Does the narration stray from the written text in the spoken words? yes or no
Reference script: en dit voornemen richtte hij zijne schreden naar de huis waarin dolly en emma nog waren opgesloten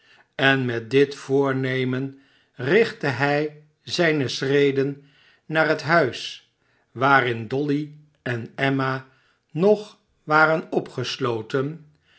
yes